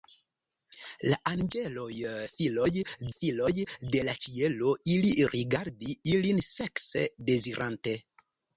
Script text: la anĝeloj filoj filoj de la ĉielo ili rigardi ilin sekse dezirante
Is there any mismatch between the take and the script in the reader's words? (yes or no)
no